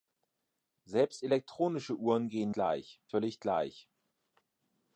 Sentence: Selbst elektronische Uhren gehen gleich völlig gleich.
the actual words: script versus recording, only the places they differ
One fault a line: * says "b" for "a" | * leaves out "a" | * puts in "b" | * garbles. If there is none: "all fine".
all fine